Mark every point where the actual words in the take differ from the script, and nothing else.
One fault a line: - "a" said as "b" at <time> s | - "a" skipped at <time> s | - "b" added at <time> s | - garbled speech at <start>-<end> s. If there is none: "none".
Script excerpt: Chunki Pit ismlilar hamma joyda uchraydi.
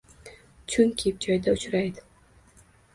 - "Pit ismlilar hamma" skipped at 1.1 s